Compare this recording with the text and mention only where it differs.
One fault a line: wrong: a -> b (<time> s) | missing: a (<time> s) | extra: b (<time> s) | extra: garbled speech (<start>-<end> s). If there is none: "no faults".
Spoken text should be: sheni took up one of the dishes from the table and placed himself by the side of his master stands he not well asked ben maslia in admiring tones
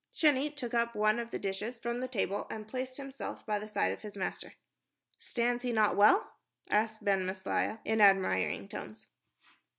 no faults